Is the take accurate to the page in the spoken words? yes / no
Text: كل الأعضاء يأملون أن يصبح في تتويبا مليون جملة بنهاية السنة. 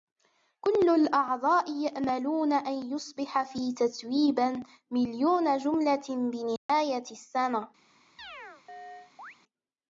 yes